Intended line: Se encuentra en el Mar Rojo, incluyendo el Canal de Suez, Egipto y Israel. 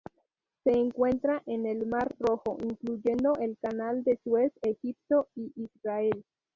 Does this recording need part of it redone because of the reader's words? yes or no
no